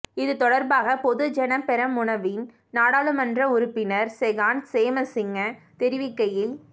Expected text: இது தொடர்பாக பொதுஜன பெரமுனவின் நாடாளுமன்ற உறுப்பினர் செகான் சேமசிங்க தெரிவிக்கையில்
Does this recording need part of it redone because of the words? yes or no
no